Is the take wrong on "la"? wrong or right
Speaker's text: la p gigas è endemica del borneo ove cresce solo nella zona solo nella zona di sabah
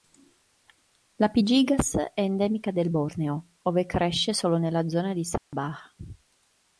right